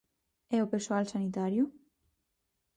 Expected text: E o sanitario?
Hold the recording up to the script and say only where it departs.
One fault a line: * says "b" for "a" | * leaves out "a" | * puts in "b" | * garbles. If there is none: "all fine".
* puts in "persoal"